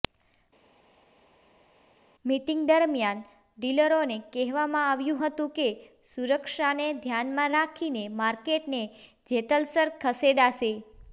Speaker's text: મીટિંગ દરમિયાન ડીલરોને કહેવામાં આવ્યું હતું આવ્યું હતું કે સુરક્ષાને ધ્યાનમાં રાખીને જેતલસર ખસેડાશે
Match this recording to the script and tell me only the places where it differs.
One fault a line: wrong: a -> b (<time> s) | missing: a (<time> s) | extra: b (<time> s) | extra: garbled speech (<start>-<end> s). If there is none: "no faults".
missing: આવ્યું હતું (5.5 s)
extra: માર્કેટને (8.2 s)